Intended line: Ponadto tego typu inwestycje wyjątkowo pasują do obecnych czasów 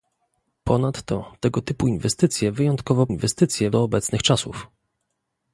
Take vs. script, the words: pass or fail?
fail